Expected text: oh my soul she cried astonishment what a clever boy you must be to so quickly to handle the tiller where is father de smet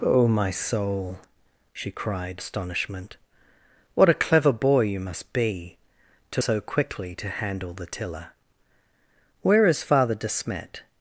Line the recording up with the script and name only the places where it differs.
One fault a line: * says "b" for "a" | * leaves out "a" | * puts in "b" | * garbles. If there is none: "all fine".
all fine